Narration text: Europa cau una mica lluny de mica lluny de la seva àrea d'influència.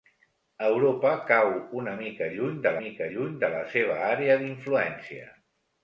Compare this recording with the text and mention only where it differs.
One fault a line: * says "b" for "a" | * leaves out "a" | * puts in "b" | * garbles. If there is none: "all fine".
all fine